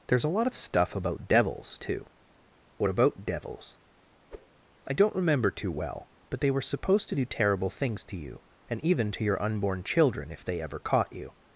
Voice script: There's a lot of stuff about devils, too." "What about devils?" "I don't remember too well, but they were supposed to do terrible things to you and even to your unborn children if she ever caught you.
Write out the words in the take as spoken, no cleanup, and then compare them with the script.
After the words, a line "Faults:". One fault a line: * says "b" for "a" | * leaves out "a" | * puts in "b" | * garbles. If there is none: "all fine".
There's a lot of stuff about devils, too." "What about devils?" "I don't remember too well, but they were supposed to do terrible things to you and even to your unborn children if they ever caught you.
Faults:
* says "they" for "she"